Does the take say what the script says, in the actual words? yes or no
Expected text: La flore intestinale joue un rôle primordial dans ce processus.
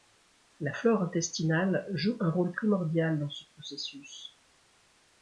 yes